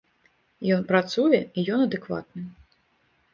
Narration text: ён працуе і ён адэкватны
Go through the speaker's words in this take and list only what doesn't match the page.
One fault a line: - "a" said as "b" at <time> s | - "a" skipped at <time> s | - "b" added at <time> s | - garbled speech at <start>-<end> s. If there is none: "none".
none